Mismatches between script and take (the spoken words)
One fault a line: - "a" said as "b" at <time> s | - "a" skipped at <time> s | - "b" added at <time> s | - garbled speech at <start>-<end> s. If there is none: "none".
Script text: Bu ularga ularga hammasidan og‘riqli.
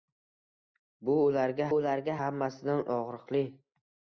none